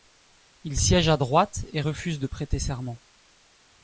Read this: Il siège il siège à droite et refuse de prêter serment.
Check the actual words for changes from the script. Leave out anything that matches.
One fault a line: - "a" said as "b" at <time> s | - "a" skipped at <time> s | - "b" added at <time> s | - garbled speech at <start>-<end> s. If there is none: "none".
- "il siège" skipped at 1.1 s